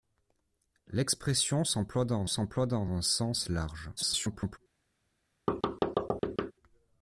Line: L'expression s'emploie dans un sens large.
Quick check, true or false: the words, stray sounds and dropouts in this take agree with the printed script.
false